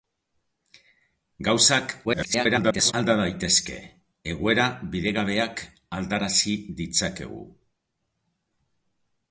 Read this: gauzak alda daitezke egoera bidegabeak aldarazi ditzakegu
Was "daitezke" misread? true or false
false